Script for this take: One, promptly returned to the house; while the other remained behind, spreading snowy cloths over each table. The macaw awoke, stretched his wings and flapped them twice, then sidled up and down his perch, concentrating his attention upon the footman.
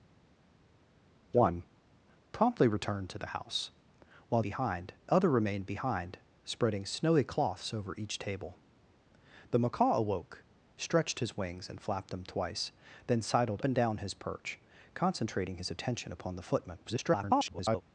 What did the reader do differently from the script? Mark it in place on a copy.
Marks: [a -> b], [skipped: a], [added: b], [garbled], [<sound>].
One, promptly returned to the house; while [the -> behind] other remained behind, spreading snowy cloths over each table. The macaw awoke, stretched his wings and flapped them twice, then sidled [skipped: up] and down his perch, concentrating his attention upon the footman. [garbled]